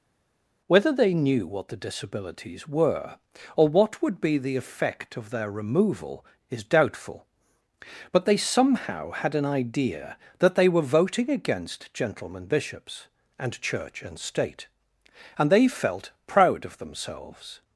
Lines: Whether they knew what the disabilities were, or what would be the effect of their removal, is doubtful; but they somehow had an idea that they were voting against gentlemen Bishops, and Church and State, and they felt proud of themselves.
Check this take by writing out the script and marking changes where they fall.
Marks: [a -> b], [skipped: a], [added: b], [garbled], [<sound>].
Whether they knew what the disabilities were, or what would be the effect of their removal, is doubtful; but they somehow had an idea that they were voting against gentlemen Bishops, and Church and State, and they felt proud of themselves.